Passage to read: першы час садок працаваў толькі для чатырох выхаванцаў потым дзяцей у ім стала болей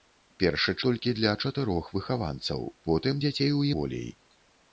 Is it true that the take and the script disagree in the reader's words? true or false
true